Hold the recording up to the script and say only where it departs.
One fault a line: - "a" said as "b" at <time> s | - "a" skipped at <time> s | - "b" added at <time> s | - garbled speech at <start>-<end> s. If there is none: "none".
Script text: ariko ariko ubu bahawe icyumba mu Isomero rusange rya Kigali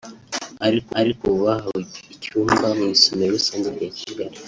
none